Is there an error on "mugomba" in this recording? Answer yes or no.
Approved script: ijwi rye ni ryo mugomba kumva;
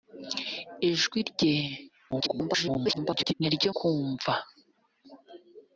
yes